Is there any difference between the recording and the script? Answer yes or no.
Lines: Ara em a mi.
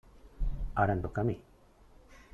yes